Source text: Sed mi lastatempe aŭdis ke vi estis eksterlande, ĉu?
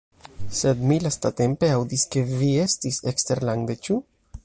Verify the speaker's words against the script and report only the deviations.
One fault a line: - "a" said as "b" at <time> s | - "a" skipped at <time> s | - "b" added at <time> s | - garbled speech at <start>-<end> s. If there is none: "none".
none